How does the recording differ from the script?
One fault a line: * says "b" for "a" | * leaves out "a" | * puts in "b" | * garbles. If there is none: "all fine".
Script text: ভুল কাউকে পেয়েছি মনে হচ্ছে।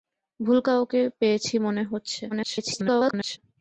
* garbles